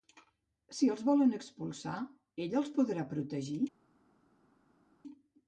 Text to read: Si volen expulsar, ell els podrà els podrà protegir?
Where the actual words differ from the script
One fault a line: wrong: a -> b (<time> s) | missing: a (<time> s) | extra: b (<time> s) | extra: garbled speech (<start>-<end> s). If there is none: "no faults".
extra: els (0.9 s)
missing: els podrà (3.1 s)